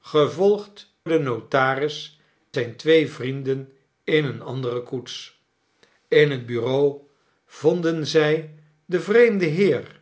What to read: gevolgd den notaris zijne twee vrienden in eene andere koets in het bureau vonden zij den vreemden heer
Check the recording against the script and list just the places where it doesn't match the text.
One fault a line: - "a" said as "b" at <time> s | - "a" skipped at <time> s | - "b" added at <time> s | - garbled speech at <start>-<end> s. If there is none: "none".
none